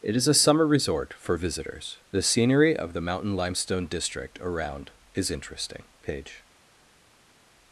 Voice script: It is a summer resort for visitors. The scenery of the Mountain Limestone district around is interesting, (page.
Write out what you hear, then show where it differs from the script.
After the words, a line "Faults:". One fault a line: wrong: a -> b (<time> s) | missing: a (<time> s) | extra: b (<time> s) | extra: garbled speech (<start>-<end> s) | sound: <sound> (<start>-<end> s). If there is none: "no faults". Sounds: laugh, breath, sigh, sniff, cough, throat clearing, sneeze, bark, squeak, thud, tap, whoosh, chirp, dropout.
It is a summer resort for visitors. The scenery of the Mountain Limestone district around is interesting, (page.
Faults:
no faults